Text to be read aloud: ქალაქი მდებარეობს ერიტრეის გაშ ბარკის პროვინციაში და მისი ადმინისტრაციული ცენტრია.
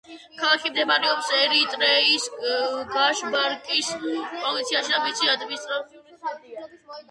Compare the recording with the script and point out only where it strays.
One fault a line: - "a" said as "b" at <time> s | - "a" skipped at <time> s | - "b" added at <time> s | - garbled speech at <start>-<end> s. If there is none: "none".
none